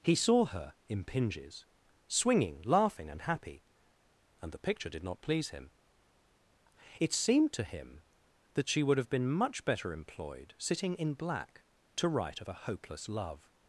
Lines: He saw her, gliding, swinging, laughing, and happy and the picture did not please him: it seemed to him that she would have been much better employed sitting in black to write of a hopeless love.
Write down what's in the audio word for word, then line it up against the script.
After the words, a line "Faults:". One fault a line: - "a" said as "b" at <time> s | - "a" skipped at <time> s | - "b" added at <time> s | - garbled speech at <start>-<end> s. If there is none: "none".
He saw her, impinges, swinging, laughing, and happy and the picture did not please him: it seemed to him that she would have been much better employed sitting in black to write of a hopeless love.
Faults:
- "gliding" said as "impinges" at 0.9 s